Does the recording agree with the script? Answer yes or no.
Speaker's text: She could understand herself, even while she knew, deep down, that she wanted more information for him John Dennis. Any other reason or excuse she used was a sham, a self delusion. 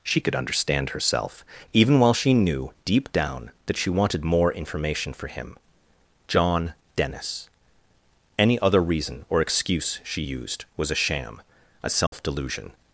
yes